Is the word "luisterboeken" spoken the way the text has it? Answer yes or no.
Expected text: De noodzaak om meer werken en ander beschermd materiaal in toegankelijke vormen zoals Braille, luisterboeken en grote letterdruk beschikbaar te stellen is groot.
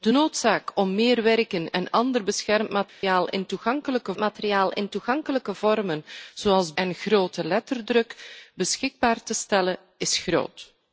no